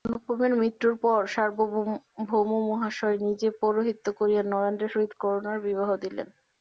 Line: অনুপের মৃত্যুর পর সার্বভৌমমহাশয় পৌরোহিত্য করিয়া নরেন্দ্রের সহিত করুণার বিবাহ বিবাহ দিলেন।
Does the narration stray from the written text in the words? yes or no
yes